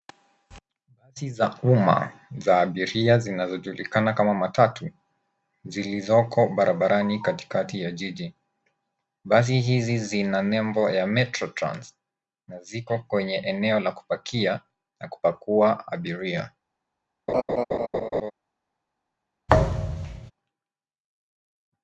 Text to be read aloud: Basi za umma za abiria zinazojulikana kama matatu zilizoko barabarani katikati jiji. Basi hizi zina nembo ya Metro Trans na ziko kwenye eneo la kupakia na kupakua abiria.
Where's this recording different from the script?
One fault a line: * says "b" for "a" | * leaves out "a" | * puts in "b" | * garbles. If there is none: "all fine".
* puts in "ya"